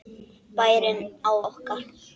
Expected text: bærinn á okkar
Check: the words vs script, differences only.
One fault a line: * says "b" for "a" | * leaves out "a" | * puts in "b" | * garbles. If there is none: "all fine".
all fine